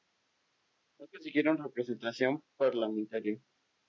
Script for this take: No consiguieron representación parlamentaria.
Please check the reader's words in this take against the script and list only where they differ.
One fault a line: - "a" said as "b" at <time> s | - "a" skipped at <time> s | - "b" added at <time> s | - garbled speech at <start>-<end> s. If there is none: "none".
none